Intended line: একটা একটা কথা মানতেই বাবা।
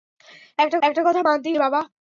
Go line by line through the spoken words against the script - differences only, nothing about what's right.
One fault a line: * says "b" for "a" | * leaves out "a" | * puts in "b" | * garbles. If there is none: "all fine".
all fine